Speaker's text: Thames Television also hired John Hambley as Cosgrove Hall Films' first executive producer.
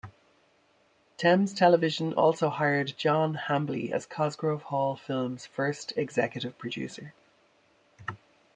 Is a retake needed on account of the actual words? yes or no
no